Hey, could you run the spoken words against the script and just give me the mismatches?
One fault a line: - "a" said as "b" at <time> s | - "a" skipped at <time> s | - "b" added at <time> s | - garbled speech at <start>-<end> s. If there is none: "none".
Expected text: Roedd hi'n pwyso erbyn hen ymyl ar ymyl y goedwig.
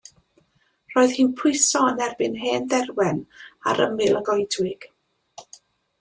- "yn" added at 1.9 s
- "ymyl" said as "dderwen" at 2.7 s